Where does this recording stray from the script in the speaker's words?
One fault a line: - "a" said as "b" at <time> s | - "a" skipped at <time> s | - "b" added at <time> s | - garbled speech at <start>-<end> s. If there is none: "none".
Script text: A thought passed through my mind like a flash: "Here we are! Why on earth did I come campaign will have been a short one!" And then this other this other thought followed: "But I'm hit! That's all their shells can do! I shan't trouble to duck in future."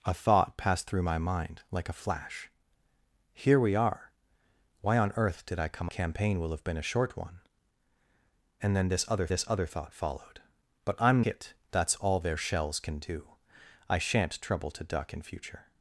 none